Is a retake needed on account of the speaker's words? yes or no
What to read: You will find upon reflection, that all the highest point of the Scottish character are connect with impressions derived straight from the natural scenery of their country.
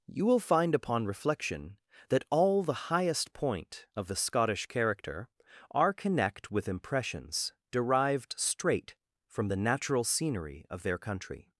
no